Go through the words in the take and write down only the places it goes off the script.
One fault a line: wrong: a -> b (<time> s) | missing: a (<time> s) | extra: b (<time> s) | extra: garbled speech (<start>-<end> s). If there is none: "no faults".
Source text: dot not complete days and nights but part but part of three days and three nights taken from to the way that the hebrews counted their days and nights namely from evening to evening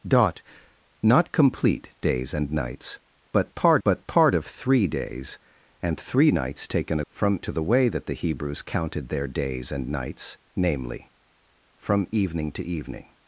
no faults